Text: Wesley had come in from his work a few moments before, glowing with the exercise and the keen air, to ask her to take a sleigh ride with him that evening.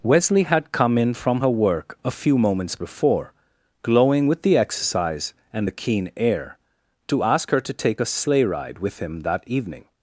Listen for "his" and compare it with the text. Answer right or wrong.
wrong